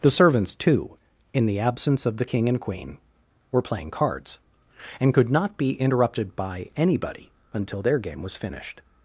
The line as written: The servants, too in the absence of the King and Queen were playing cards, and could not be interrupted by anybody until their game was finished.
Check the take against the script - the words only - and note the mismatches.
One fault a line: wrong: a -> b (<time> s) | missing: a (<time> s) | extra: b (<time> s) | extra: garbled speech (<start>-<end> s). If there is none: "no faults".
no faults